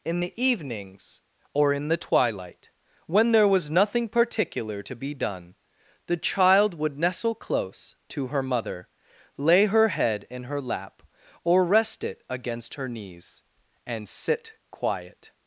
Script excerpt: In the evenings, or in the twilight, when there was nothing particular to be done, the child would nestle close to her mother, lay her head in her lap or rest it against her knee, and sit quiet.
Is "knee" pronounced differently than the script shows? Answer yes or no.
yes